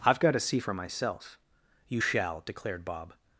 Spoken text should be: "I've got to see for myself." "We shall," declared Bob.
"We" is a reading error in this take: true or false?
true